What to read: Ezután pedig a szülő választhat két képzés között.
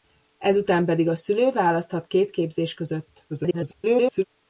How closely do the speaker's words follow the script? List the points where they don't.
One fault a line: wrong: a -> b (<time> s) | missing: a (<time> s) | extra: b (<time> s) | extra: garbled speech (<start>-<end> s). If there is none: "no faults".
extra: garbled speech (3.3-4.2 s)